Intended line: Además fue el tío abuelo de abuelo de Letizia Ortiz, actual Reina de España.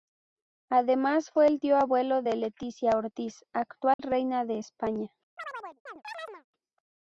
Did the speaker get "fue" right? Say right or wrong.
right